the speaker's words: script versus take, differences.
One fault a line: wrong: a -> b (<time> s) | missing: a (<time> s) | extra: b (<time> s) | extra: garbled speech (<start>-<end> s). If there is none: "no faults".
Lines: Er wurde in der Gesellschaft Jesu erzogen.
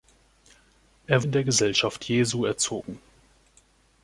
missing: wurde (1.2 s)